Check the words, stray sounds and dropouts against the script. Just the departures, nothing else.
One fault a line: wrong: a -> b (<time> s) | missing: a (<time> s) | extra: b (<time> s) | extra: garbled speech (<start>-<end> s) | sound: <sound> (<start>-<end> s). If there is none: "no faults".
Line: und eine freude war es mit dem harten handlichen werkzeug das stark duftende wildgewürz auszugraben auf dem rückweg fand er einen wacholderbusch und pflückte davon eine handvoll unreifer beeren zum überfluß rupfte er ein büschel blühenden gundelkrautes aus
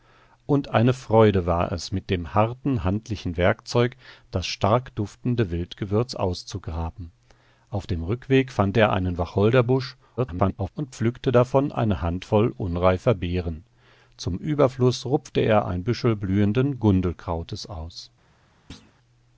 extra: garbled speech (10.2-10.7 s)
sound: thud (18.7-18.9 s)